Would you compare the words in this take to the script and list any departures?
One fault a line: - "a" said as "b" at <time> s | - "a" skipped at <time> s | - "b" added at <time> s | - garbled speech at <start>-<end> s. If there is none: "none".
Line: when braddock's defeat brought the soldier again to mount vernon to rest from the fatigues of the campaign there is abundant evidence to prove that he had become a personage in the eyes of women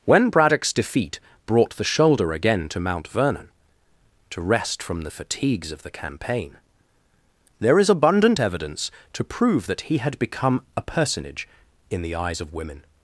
- "soldier" said as "shoulder" at 1.8 s